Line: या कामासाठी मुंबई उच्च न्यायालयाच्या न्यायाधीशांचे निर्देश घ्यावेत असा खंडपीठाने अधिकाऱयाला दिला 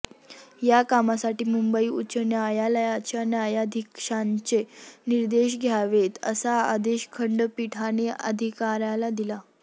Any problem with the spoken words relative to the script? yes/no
yes